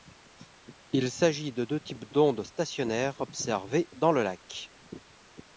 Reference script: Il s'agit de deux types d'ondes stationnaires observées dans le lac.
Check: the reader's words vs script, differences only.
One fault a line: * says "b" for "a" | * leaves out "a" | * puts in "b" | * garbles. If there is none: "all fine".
all fine